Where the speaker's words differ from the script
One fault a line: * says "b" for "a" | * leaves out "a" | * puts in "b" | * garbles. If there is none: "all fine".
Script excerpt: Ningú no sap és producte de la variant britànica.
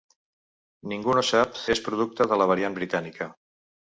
all fine